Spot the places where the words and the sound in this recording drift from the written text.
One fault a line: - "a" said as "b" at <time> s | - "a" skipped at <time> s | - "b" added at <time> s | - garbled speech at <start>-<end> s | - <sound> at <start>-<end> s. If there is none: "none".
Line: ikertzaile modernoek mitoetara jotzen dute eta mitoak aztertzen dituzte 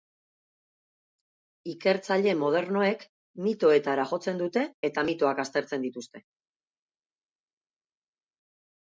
none